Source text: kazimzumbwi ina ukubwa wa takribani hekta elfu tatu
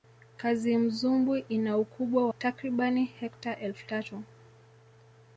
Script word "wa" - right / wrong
wrong